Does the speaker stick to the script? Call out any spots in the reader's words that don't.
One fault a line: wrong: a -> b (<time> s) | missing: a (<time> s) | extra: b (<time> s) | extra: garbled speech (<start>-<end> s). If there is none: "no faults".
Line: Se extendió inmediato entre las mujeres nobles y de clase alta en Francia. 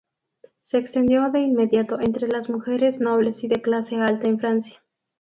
extra: de (1.3 s)